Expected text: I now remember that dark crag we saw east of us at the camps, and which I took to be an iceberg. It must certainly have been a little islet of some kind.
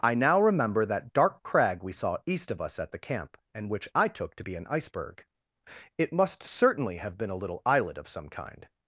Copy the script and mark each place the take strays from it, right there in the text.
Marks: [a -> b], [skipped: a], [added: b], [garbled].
I now remember that dark crag we saw east of us at the [camps, -> camp] and which I took to be an iceberg. It must certainly have been a little islet of some kind.